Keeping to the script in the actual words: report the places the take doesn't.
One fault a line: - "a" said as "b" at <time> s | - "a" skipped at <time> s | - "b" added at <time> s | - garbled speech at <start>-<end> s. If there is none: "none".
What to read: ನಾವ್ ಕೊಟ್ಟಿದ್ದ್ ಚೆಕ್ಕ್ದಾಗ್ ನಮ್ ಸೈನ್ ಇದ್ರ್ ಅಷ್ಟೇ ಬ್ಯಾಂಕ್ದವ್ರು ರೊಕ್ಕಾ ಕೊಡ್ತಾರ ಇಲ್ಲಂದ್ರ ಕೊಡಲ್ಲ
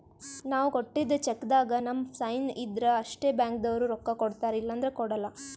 none